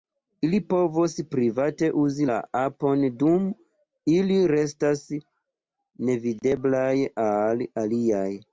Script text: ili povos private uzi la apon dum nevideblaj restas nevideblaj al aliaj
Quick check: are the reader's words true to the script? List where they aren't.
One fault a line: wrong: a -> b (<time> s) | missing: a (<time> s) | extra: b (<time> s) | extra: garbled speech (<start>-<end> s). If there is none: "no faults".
wrong: nevideblaj -> ili (4.1 s)